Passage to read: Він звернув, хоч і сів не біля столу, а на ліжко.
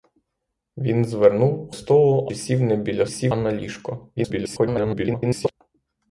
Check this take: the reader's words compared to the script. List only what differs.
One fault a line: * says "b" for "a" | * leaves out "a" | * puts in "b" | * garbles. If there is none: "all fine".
* says "столу" for "хоч"
* says "сів" for "столу"
* garbles